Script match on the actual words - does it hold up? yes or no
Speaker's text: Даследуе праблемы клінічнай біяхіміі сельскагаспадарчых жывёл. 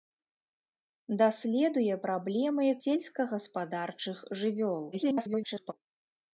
no